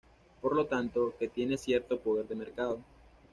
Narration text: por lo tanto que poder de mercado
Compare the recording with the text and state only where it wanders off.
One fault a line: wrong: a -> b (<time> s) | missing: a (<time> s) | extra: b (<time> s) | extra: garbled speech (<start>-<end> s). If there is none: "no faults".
extra: tiene cierto (1.3 s)